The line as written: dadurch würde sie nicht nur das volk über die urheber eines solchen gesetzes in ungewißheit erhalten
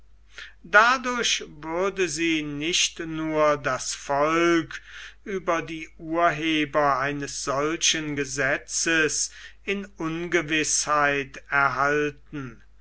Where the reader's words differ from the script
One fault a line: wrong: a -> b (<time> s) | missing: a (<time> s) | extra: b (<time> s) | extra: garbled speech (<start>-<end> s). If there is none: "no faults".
no faults